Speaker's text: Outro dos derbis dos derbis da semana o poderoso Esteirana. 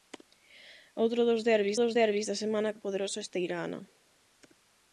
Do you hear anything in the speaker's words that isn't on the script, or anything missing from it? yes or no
no